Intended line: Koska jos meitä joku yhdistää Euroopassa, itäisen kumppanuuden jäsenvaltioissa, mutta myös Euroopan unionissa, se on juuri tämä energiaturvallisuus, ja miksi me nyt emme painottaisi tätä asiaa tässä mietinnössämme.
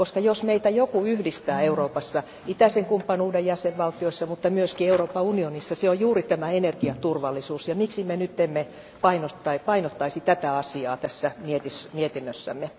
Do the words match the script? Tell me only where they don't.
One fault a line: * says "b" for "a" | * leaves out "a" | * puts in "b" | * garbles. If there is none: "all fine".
all fine